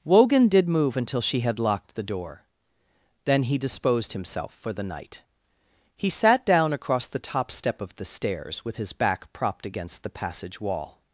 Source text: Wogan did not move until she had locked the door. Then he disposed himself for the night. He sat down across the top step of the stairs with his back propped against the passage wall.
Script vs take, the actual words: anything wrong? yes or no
yes